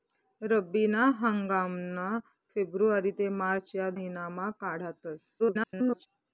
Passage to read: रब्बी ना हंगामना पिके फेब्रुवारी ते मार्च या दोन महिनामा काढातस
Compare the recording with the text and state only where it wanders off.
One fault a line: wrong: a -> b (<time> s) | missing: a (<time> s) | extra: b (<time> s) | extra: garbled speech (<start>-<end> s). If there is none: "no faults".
missing: पिके (2.1 s)
missing: दोन (3.9 s)
extra: garbled speech (5.4-6.1 s)